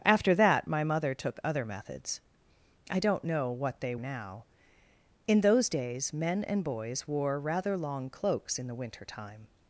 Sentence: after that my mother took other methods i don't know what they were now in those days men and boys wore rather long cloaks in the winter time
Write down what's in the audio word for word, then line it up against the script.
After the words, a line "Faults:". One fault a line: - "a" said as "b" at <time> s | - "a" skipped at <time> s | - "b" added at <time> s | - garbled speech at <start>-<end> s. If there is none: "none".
after that my mother took other methods i don't know what they now in those days men and boys wore rather long cloaks in the winter time
Faults:
- "were" skipped at 4.0 s